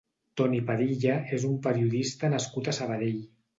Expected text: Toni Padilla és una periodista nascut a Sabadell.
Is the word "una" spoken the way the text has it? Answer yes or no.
no